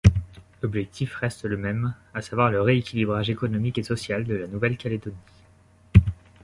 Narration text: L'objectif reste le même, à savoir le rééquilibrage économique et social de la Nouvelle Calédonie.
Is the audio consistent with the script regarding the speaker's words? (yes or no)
yes